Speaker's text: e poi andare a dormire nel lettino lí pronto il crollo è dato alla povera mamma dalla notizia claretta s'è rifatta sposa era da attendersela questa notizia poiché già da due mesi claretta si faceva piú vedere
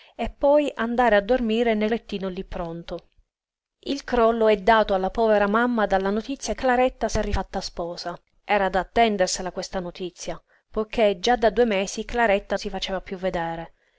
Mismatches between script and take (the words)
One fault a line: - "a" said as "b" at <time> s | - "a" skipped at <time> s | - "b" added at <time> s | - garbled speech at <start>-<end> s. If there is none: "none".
none